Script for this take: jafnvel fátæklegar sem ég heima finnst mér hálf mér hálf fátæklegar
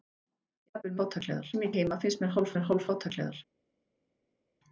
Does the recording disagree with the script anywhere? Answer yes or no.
no